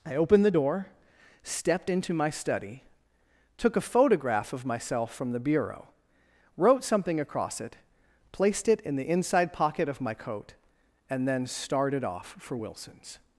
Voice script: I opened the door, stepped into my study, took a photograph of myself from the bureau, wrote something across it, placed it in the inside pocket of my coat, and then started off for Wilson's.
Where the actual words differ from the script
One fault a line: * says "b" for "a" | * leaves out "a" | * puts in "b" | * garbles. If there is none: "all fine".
all fine